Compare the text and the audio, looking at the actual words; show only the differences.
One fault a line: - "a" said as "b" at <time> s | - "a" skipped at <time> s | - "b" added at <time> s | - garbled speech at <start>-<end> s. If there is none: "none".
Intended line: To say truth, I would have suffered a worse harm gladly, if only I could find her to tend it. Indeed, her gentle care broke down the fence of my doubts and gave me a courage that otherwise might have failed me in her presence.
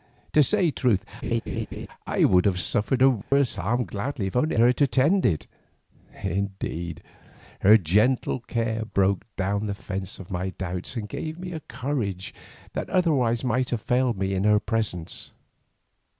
- "I could find" skipped at 4.5 s